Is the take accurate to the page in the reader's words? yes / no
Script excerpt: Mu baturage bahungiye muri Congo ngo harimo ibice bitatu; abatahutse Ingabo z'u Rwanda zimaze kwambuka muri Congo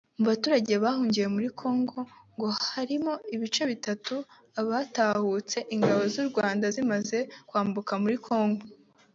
yes